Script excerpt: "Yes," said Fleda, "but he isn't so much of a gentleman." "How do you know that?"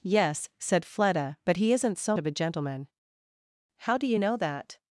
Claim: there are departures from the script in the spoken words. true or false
true